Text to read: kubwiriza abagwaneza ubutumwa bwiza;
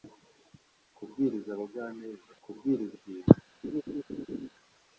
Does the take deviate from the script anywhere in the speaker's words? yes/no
yes